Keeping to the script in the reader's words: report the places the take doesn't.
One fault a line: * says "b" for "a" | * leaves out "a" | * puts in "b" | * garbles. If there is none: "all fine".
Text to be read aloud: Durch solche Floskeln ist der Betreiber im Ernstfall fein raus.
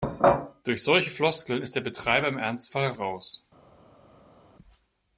* leaves out "fein"